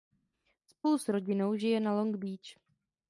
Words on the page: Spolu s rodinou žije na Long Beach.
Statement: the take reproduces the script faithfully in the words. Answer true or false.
true